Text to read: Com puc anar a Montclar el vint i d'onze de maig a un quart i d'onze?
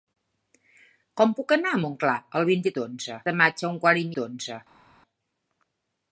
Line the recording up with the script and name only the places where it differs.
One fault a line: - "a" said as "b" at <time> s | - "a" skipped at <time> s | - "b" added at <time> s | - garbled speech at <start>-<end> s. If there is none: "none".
none